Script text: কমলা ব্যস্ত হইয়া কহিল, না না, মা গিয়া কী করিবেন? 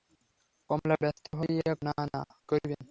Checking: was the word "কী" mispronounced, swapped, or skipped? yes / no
yes